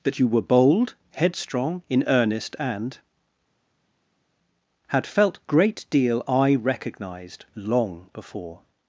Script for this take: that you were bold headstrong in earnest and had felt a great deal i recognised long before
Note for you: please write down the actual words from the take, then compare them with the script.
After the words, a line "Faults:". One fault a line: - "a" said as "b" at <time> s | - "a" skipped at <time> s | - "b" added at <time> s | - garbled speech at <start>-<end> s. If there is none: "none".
that you were bold headstrong in earnest and had felt great deal i recognised long before
Faults:
- "a" skipped at 5.4 s